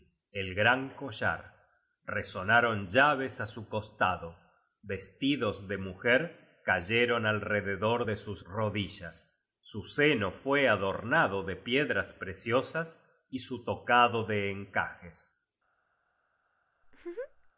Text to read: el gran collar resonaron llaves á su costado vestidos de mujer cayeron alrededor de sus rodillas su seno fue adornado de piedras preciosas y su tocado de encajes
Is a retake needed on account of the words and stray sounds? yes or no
yes